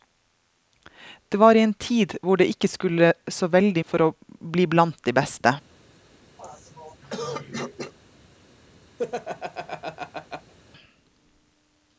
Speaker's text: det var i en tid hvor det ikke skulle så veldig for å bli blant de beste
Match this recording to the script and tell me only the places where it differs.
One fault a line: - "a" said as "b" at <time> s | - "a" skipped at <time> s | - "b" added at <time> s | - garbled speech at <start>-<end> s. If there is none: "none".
none